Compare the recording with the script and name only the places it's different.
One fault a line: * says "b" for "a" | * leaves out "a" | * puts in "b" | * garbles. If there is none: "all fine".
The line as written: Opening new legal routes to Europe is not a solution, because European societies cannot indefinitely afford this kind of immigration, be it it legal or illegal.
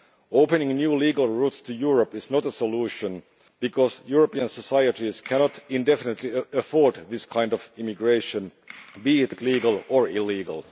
all fine